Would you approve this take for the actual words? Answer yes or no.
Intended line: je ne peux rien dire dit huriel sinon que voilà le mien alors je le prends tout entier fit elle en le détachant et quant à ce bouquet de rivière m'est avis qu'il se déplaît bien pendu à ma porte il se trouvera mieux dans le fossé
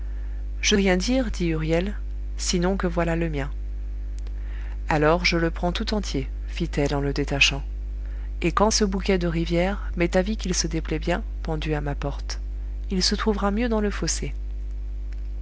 no